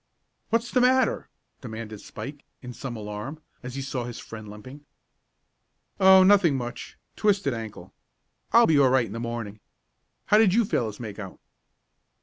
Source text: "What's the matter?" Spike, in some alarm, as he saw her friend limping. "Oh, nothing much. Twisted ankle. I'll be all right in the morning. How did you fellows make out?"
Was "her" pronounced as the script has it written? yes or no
no